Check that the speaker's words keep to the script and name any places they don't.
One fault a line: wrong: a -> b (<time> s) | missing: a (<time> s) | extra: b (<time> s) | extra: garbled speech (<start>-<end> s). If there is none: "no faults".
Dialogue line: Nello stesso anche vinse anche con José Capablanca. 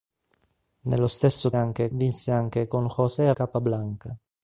no faults